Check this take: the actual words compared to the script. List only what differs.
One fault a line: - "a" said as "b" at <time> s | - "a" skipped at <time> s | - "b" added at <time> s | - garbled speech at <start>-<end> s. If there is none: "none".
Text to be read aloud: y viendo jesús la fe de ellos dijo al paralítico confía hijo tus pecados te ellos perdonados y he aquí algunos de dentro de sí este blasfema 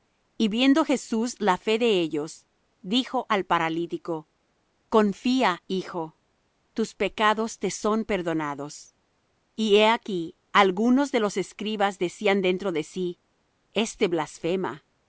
- "ellos" said as "son" at 7.7 s
- "los escribas decían" added at 11.2 s